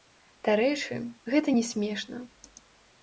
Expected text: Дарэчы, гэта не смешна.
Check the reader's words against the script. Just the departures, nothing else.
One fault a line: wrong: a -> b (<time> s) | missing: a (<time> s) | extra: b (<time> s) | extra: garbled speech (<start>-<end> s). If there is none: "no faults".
no faults